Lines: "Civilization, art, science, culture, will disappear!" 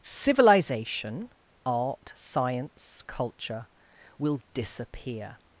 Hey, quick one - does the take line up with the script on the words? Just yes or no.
yes